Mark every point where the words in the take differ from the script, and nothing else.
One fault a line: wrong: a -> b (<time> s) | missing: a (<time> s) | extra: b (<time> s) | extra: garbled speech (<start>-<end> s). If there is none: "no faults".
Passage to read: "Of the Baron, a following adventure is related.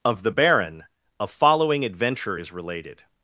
no faults